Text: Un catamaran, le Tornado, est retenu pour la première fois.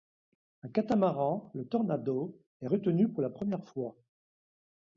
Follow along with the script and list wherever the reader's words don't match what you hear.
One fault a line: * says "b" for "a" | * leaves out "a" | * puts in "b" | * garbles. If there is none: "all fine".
all fine